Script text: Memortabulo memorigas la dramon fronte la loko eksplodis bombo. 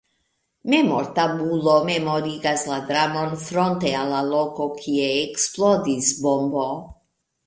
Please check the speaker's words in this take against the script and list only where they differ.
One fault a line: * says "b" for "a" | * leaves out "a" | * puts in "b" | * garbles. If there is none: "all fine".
* puts in "al"
* puts in "kie"